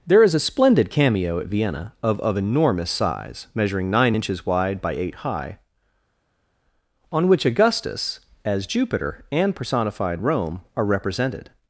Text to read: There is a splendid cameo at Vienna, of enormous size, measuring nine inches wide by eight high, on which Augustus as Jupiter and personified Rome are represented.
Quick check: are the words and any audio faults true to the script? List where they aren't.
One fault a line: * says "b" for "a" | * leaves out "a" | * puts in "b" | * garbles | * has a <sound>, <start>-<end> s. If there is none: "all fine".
* puts in "of"